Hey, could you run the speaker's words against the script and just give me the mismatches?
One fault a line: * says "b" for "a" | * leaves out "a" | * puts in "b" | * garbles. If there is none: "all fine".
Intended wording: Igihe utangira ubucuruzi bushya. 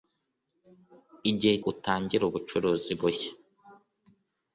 all fine